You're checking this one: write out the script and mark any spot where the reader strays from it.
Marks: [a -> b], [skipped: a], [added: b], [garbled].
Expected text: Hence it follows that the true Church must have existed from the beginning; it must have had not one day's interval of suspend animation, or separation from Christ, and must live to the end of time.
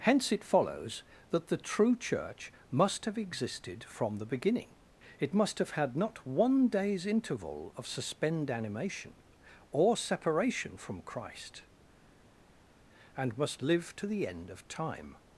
Hence it follows that the true Church must have existed from the beginning; it must have had not one day's interval of suspend animation, or separation from Christ, and must live to the end of time.